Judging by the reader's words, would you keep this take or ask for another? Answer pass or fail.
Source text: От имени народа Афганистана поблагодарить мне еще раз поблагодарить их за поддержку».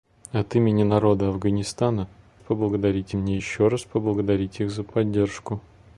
pass